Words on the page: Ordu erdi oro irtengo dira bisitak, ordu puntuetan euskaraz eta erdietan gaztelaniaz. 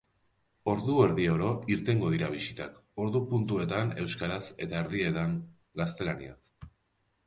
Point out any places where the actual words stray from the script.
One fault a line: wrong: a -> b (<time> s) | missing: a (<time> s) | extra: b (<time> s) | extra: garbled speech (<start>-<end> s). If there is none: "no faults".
no faults